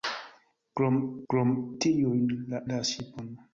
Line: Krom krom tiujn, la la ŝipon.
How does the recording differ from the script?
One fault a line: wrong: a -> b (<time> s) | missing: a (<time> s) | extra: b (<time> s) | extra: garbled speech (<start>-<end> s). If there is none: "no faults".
no faults